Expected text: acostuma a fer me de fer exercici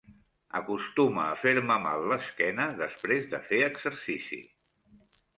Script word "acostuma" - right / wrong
right